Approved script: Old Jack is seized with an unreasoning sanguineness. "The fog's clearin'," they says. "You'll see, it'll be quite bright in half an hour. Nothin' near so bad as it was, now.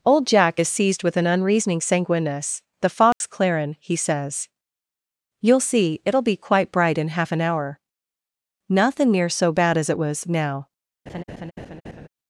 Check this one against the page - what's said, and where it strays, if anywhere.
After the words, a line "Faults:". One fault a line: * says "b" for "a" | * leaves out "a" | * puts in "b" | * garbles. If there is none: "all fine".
Old Jack is seized with an unreasoning sanguineness. "The fog's clearin'," he says. "You'll see, it'll be quite bright in half an hour. Nothin' near so bad as it was, now.
Faults:
* says "he" for "they"